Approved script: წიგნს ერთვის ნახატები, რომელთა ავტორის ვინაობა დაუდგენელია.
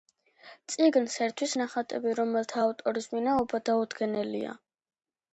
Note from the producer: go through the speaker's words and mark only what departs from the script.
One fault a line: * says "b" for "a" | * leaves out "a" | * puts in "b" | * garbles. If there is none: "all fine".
all fine